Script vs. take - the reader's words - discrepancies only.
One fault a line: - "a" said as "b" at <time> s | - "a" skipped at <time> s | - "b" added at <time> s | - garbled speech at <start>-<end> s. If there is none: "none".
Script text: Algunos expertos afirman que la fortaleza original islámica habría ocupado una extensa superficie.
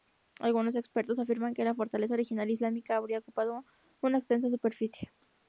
none